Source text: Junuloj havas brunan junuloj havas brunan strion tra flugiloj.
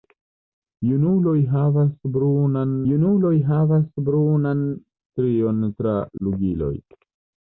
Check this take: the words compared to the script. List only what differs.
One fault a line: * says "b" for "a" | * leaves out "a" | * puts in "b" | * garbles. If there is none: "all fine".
all fine